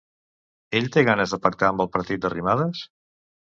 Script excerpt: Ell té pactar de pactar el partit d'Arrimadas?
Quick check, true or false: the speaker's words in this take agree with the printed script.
false